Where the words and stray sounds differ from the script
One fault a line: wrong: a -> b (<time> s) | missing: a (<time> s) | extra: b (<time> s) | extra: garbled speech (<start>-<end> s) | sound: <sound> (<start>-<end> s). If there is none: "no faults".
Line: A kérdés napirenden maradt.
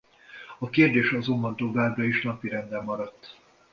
extra: azonban továbbra is (1.1 s)